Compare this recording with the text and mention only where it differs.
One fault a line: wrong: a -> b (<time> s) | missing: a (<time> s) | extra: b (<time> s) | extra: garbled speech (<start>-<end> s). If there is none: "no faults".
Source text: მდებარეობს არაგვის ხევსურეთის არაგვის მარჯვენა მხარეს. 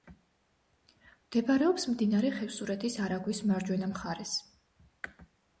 wrong: არაგვის -> მდინარე (1.9 s)